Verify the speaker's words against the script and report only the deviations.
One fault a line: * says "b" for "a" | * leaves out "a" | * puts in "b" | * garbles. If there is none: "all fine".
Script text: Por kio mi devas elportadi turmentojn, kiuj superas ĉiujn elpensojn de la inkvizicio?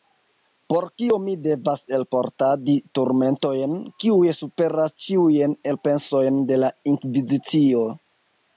all fine